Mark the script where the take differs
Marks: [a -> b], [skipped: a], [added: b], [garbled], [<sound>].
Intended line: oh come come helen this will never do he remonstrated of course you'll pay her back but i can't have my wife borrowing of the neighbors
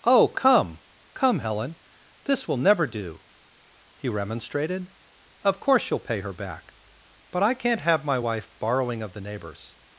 oh come come helen this will never do he remonstrated of course you'll pay her back but i can't have my wife borrowing of the neighbors